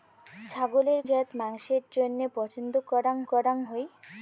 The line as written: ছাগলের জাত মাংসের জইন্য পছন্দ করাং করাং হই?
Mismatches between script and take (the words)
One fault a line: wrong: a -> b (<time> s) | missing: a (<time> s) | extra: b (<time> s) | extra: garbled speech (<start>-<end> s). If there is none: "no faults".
no faults